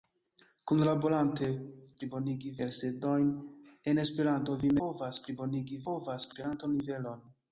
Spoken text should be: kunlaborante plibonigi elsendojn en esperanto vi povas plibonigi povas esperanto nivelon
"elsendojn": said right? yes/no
yes